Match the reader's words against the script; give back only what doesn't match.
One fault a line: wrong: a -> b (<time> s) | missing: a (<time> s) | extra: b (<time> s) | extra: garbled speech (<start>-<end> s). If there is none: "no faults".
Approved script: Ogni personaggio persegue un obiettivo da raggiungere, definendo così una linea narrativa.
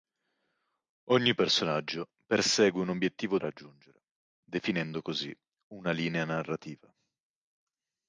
missing: da (3.4 s)